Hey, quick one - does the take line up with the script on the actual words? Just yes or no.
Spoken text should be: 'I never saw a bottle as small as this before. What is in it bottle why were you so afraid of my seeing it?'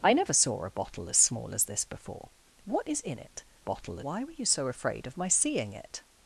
yes